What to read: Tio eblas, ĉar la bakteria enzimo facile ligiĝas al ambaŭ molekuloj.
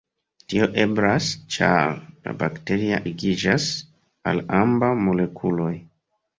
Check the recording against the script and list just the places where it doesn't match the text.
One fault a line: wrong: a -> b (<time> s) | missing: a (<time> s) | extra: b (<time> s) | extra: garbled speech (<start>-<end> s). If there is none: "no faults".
missing: enzimo facile (3.0 s)